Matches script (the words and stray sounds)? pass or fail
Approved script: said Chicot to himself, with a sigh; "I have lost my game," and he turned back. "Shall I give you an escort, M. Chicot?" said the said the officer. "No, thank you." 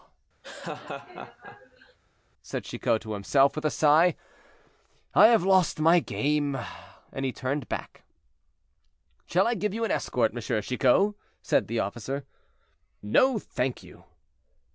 fail